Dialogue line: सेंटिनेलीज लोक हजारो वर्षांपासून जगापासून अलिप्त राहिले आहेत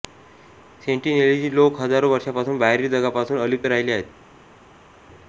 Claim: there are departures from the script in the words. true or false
true